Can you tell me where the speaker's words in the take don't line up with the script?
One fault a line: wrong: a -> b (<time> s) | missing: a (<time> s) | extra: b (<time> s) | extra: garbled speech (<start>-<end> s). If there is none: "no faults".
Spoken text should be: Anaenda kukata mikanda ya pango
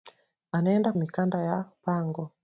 missing: kukata (0.9 s)